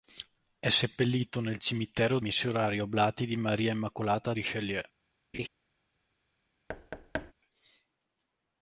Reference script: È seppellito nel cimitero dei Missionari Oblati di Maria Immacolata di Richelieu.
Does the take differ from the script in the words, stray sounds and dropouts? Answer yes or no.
yes